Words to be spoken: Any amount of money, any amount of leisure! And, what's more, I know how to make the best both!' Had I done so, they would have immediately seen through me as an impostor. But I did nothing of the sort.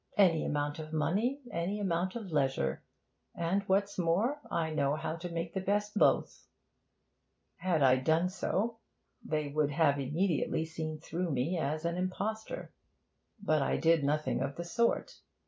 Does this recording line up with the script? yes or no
yes